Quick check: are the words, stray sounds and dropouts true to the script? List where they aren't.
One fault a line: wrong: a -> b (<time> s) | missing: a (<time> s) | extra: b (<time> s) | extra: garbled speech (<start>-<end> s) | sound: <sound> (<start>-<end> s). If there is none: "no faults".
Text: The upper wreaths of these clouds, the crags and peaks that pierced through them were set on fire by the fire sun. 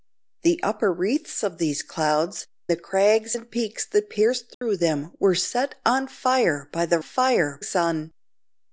sound: dropout (4.5-4.6 s)